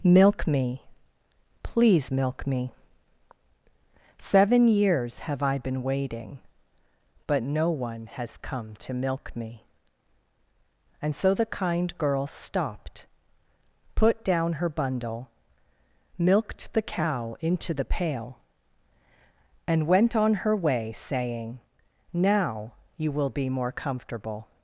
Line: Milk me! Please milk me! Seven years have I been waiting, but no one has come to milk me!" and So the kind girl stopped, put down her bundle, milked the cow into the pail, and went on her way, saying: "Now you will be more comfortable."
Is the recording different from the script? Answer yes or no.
no